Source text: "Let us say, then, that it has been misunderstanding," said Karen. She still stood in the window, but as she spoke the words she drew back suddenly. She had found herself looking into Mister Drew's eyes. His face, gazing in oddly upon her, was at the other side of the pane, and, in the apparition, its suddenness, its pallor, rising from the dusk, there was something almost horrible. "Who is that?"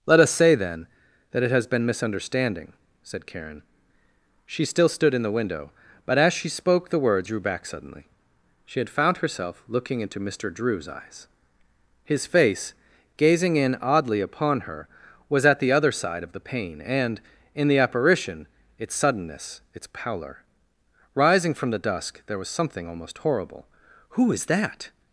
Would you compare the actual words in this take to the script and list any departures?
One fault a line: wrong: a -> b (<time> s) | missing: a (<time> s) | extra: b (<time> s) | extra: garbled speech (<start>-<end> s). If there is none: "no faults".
missing: she (7.3 s)